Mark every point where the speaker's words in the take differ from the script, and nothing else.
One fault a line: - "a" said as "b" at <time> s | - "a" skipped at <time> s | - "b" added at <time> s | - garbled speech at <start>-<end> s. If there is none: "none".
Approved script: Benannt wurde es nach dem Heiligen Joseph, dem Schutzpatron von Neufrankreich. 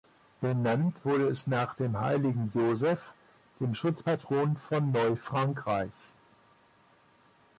none